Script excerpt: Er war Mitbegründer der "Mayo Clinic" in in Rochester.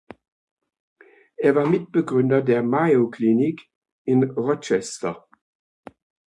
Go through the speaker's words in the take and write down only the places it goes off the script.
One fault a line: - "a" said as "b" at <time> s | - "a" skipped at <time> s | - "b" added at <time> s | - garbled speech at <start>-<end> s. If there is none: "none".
- "in" skipped at 4.2 s